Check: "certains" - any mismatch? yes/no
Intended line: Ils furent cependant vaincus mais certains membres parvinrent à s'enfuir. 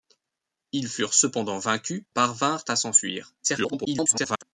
yes